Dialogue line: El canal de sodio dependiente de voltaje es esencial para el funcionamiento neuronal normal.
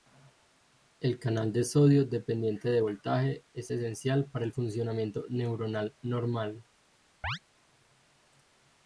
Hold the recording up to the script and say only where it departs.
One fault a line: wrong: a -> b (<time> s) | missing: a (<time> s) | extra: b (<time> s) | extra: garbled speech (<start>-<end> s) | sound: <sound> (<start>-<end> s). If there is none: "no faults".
sound: chirp (7.2-7.4 s)